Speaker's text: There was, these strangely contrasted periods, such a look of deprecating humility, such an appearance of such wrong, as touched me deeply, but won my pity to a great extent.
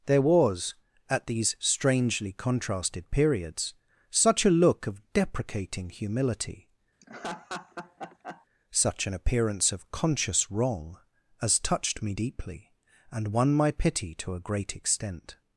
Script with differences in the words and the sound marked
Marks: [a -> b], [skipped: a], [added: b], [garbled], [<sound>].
There was, [added: at] these strangely contrasted periods, such a look of deprecating humility, [laugh] such an appearance of [such -> conscious] wrong, as touched me deeply, [but -> and] won my pity to a great extent.